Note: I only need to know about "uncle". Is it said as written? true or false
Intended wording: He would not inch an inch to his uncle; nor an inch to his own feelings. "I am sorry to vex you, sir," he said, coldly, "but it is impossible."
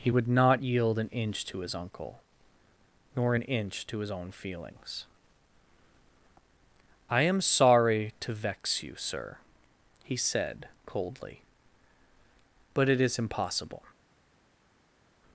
true